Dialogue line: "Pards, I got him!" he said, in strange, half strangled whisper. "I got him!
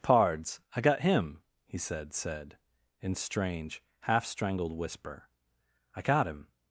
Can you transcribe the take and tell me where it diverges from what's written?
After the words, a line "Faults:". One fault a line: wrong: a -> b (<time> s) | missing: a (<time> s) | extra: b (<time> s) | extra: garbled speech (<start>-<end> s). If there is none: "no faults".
"Pards, I got him!" he said said, in strange, half strangled whisper. "I got him!
Faults:
extra: said (2.1 s)